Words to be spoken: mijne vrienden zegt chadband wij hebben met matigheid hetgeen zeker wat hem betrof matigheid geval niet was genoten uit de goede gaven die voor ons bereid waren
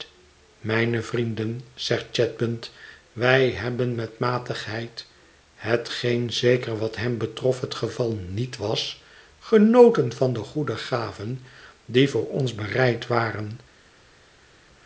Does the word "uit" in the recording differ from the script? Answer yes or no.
yes